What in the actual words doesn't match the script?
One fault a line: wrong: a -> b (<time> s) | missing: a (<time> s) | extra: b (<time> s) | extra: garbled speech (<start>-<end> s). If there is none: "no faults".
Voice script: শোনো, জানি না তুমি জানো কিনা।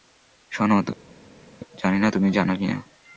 no faults